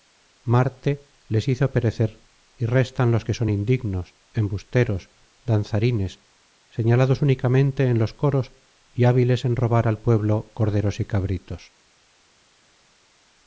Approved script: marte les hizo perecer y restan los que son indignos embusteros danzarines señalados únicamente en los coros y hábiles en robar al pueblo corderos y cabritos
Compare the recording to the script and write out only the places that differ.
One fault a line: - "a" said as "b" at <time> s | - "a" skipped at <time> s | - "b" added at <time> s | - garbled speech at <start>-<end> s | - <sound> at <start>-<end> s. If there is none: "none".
none